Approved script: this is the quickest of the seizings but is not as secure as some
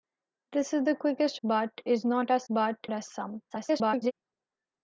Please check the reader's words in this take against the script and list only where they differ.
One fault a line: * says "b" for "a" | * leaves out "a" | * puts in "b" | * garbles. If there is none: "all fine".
* leaves out "of the seizings"
* says "but" for "secure"
* garbles